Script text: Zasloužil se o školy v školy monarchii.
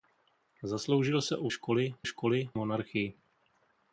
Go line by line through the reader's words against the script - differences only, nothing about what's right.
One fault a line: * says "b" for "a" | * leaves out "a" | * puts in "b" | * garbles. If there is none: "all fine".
all fine